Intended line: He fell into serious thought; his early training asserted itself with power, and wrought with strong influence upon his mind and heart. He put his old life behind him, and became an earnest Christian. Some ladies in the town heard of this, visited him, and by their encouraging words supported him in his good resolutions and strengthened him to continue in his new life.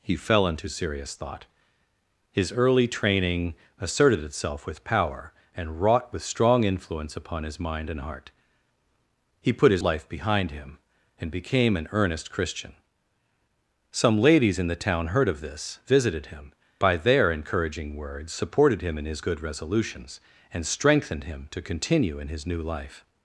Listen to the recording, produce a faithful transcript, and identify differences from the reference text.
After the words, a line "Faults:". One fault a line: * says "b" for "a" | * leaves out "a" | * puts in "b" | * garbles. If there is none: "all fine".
He fell into serious thought; his early training asserted itself with power, and wrought with strong influence upon his mind and heart. He put his life behind him, and became an earnest Christian. Some ladies in the town heard of this, visited him, by their encouraging words supported him in his good resolutions and strengthened him to continue in his new life.
Faults:
* leaves out "old"
* leaves out "and"